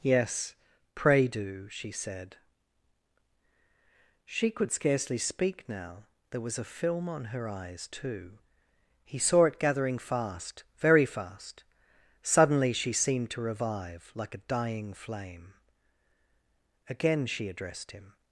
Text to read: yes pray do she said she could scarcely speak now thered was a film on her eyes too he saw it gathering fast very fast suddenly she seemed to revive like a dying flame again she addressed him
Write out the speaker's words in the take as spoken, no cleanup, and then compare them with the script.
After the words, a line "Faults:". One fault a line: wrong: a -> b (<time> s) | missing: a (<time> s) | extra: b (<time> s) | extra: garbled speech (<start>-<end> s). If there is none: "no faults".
yes pray do she said she could scarcely speak now there was a film on her eyes too he saw it gathering fast very fast suddenly she seemed to revive like a dying flame again she addressed him
Faults:
wrong: thered -> there (6.3 s)